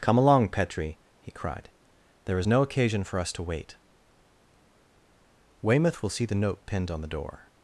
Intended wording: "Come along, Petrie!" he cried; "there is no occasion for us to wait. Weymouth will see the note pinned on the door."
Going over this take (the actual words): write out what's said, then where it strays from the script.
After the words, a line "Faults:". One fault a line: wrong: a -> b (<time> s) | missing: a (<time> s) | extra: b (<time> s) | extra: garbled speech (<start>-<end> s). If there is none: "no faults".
"Come along, Petrie!" he cried; "there is no occasion for us to wait. Weymouth will see the note pinned on the door."
Faults:
no faults